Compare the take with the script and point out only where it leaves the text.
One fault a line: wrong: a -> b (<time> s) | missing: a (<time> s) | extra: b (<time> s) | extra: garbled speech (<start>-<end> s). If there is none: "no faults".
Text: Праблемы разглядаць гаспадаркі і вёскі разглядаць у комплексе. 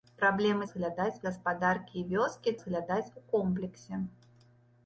no faults